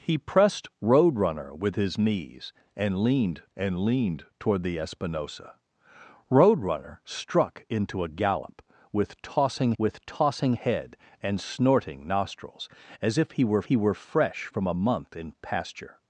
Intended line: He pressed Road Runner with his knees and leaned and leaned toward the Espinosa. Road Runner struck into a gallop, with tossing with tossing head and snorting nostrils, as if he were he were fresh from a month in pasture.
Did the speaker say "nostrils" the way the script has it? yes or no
yes